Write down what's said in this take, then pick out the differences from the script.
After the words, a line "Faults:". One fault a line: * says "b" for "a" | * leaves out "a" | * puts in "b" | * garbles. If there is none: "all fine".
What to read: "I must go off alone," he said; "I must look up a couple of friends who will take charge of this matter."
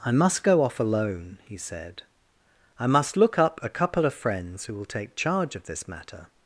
"I must go off alone," he said; "I must look up a couple of friends who will take charge of this matter."
Faults:
all fine